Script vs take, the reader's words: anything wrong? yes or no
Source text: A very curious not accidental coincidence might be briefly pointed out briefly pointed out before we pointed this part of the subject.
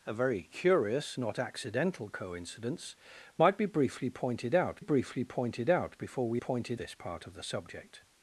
no